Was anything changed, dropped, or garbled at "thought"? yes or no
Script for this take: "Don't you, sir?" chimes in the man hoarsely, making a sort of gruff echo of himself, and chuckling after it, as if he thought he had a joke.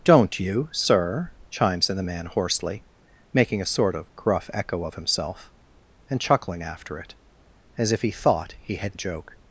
no